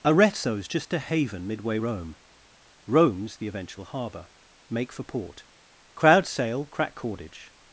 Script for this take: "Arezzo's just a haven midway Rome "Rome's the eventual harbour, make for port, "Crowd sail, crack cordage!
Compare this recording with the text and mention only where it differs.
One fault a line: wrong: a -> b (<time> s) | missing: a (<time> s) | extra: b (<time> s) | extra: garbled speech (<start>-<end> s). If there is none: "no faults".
no faults